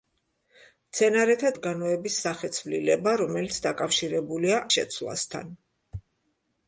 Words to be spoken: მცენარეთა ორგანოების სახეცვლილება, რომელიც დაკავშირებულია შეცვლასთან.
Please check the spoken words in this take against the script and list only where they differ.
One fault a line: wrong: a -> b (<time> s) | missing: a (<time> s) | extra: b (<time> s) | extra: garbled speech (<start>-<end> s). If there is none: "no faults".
no faults